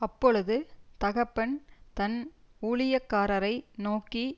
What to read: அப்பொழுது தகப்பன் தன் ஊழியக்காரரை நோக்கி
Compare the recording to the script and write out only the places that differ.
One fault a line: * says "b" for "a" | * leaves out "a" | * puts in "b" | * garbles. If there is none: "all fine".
all fine